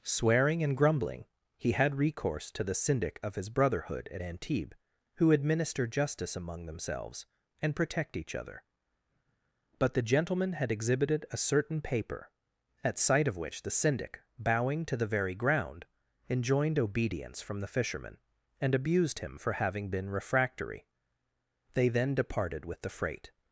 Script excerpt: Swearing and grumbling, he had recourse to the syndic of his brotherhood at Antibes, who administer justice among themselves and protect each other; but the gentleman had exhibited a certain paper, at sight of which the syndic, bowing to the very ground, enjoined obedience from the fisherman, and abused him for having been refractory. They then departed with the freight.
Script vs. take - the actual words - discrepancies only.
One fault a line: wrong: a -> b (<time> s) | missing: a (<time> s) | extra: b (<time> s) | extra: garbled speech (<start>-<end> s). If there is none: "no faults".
no faults